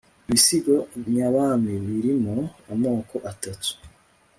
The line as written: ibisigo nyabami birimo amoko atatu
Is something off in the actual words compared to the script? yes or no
no